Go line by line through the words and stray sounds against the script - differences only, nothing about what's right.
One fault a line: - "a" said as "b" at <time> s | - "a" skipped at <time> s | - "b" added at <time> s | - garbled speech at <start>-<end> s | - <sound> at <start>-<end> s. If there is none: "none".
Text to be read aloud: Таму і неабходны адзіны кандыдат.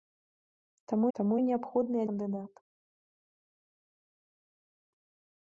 - "таму" added at 1.2 s
- "адзіны" skipped at 2.0 s